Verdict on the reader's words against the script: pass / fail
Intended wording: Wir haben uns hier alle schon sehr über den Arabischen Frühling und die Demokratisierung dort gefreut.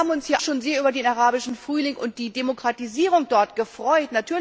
fail